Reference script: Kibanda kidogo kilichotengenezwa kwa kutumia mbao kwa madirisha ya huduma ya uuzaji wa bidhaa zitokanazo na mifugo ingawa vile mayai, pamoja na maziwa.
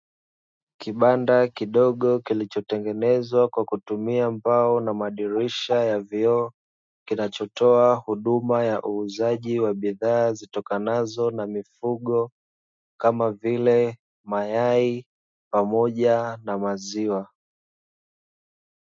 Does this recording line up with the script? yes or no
no